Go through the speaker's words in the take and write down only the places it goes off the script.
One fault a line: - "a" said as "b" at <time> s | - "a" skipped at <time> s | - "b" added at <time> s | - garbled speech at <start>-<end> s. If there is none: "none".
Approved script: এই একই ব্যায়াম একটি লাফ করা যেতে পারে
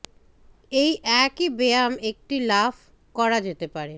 none